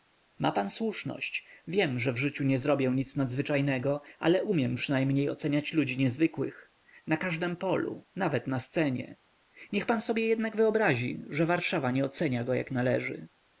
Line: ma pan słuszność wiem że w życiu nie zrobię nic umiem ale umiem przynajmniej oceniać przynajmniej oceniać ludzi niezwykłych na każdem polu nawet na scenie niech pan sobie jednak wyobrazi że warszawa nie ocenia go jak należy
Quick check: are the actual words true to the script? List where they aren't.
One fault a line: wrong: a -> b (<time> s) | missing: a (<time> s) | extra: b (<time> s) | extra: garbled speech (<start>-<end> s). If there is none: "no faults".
wrong: umiem -> nadzwyczajnego (3.1 s)
missing: przynajmniej oceniać (5.7 s)